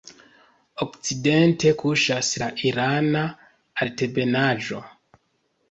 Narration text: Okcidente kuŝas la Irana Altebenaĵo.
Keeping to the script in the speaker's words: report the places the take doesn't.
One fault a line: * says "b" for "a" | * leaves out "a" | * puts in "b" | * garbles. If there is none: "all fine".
all fine